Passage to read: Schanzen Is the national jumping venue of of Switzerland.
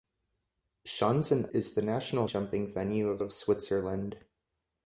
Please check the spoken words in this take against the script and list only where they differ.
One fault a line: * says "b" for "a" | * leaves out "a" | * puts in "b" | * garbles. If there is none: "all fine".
all fine